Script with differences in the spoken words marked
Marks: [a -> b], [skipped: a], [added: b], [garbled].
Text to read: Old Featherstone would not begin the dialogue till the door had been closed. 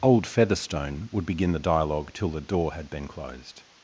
Old Featherstone would [skipped: not] begin the dialogue till the door had been closed.